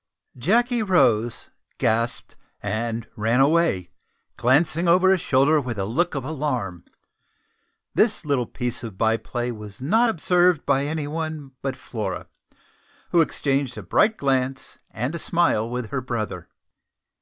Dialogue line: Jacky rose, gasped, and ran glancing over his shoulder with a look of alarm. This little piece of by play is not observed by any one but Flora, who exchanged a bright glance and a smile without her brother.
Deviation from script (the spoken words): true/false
true